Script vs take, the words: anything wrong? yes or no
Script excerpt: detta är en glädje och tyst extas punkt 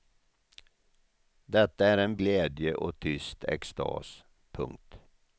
no